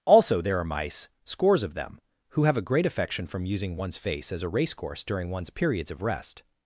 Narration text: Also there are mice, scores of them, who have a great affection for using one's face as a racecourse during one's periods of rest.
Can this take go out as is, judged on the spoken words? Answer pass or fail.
fail